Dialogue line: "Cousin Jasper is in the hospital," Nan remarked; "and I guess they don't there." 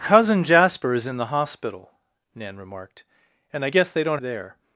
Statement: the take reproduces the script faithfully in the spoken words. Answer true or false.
true